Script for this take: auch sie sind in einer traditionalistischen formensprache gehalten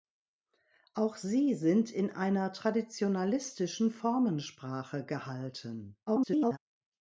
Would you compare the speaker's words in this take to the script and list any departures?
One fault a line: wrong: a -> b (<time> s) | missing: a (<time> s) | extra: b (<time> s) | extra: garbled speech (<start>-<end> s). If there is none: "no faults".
extra: garbled speech (6.1-6.6 s)